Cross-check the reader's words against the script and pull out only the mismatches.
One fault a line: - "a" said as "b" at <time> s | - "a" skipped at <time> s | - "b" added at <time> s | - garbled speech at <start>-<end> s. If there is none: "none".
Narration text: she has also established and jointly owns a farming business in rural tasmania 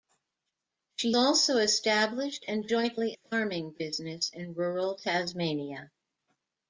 - "has" skipped at 1.1 s
- "owns a" skipped at 3.2 s